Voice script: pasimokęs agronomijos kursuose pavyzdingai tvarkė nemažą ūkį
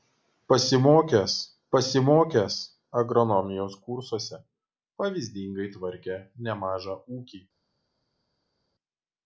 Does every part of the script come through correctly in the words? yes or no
no